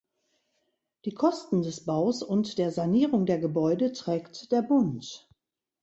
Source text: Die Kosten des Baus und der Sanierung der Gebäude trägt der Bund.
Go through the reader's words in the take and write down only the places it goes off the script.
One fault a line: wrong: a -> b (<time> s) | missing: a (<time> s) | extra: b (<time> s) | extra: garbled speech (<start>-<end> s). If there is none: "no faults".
no faults